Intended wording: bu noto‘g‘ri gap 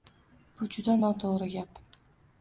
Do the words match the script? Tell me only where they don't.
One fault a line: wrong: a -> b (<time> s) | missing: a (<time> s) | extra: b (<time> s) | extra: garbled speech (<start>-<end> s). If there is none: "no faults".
extra: juda (0.8 s)